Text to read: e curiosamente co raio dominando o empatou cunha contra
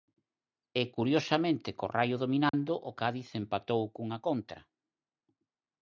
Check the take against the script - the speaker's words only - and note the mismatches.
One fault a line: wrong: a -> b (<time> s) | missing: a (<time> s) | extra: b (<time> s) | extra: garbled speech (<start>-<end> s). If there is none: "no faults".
extra: cádiz (3.0 s)